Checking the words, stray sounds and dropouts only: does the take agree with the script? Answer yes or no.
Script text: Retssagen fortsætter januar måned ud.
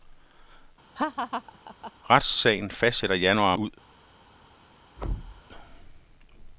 no